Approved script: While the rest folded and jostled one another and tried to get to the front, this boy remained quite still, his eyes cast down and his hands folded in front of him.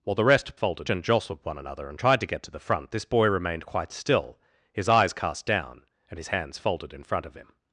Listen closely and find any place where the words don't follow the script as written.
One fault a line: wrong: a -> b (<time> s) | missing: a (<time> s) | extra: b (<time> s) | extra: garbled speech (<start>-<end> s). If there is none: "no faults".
no faults